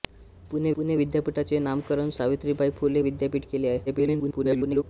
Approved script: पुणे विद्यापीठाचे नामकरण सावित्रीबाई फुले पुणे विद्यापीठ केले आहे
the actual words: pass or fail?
fail